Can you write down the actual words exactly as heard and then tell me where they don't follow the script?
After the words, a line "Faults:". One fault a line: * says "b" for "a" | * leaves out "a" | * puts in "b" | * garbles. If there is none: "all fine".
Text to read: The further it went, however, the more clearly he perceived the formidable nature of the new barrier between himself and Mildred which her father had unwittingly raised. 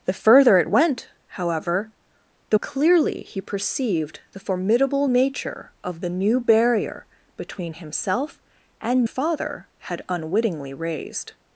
The further it went, however, the clearly he perceived the formidable nature of the new barrier between himself and Father had unwittingly raised.
Faults:
* leaves out "more"
* leaves out "Mildred which her"